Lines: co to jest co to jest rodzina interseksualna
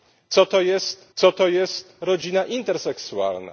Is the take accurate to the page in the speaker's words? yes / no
yes